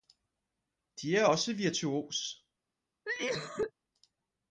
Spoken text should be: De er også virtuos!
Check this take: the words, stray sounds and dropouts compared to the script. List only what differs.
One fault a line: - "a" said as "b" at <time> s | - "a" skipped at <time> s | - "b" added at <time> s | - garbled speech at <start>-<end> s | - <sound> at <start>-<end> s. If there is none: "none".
- cough at 3.0-3.7 s